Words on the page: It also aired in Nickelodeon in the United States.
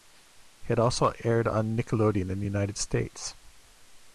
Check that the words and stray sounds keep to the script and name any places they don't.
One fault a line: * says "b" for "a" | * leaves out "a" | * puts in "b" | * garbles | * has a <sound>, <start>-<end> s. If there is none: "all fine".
* says "on" for "in"